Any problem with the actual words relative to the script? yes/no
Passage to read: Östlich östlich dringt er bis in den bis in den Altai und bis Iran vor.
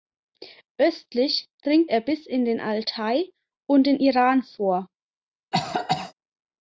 yes